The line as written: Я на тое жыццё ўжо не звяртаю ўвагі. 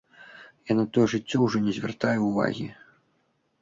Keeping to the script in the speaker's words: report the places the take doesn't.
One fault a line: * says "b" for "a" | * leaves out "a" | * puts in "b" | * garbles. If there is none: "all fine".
all fine